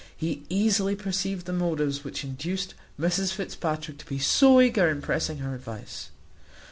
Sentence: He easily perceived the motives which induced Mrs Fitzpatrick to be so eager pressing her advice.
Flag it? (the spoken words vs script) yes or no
yes